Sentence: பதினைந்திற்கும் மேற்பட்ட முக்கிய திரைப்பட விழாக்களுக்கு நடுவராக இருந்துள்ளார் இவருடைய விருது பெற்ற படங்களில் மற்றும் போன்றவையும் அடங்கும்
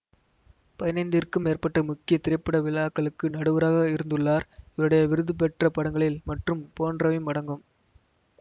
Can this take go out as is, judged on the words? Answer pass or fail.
pass